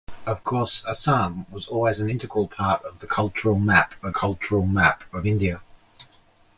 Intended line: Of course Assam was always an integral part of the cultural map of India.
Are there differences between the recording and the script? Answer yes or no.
yes